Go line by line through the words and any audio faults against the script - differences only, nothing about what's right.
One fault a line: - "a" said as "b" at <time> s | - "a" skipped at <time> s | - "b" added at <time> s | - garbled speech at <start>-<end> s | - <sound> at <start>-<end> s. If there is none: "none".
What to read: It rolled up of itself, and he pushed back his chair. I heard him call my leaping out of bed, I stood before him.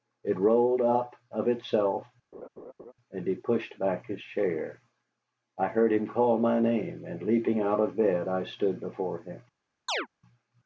- laugh at 2.3-2.9 s
- "name and" added at 6.6 s
- chirp at 9.9-10.1 s